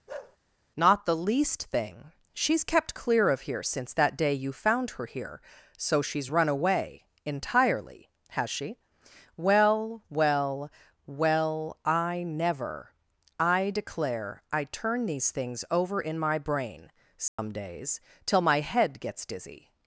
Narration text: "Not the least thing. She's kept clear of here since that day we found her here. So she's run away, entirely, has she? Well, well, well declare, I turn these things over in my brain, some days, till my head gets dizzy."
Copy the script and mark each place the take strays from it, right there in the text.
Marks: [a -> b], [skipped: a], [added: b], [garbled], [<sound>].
[bark] "Not the least thing. She's kept clear of here since that day [we -> you] found her here. So she's run away, entirely, has she? Well, well, well [added: I never I] declare, I turn these things over in my brain, some [dropout] days, till my head gets dizzy."